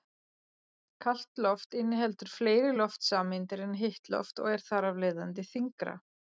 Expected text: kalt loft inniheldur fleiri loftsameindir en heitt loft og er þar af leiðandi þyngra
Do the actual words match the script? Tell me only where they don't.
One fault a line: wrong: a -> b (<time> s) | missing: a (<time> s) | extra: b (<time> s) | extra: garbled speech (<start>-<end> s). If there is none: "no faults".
no faults